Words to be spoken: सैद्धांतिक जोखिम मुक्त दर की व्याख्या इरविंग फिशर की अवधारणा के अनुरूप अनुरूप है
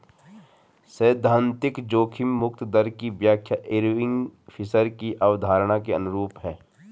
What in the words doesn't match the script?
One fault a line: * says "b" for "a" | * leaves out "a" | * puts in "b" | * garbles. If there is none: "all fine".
* leaves out "अनुरूप"